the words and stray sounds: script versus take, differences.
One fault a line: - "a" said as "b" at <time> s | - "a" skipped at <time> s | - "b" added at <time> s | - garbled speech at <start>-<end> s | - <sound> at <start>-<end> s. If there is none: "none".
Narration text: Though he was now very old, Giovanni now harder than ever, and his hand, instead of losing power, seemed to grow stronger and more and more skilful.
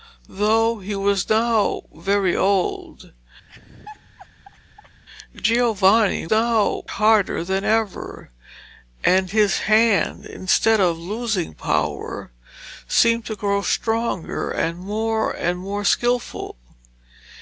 - laugh at 3.5-5.0 s